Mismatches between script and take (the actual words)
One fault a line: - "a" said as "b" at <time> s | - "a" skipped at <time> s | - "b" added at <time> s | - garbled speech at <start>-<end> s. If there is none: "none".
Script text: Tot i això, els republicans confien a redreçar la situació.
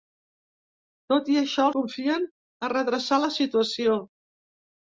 - "els republicans" skipped at 1.7 s